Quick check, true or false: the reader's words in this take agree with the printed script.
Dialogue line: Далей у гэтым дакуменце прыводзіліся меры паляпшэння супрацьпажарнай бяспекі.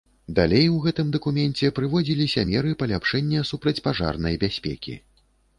true